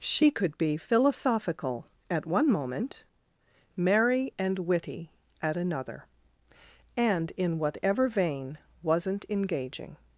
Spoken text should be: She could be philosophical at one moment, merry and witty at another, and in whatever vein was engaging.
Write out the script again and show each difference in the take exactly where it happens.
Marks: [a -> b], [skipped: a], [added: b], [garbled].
She could be philosophical at one moment, merry and witty at another, and in whatever vein [was -> wasn't] engaging.